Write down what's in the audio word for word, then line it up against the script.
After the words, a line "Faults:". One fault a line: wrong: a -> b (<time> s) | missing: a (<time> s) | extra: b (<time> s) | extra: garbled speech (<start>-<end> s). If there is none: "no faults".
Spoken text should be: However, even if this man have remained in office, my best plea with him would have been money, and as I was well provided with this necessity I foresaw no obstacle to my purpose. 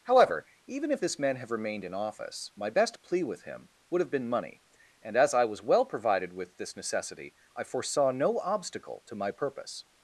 However, even if this man have remained in office, my best plea with him would have been money, and as I was well provided with this necessity I foresaw no obstacle to my purpose.
Faults:
no faults